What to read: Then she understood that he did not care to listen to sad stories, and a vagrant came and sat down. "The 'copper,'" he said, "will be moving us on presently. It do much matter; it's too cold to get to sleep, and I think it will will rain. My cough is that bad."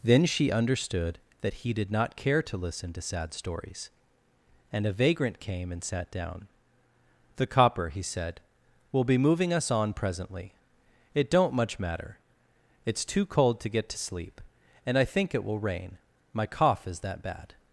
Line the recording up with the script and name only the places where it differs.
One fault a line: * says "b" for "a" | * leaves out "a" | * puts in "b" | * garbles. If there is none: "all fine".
* says "don't" for "do"
* leaves out "will"